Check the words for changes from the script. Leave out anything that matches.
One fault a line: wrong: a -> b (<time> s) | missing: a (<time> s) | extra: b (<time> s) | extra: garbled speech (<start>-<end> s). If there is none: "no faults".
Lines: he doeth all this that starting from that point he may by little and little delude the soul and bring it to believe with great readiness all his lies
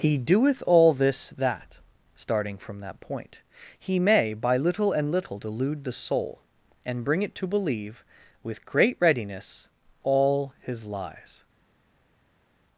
no faults